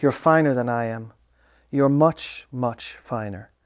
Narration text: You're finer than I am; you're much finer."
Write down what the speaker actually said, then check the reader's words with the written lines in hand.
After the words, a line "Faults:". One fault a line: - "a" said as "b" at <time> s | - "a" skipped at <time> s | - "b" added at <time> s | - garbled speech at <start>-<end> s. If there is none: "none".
You're finer than I am; you're much much finer."
Faults:
- "much" added at 2.5 s